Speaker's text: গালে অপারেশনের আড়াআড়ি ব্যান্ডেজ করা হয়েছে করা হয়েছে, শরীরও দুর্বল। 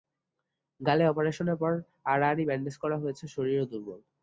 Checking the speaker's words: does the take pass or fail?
fail